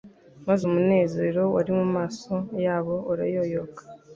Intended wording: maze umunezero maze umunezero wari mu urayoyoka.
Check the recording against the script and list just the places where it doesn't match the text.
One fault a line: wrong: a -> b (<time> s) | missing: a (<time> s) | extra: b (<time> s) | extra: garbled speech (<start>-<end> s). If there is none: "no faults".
wrong: maze umunezero wari mu -> wari mu maso yabo (1.5 s)